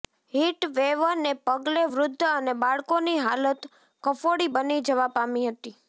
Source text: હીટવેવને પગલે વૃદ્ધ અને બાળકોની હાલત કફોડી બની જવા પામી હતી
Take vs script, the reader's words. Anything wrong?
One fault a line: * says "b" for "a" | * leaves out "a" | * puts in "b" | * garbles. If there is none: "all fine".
all fine